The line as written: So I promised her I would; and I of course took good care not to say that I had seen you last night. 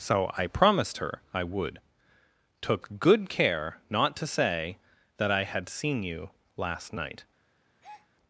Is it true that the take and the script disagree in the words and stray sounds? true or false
true